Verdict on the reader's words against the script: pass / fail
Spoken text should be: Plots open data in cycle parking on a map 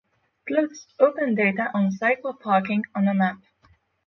fail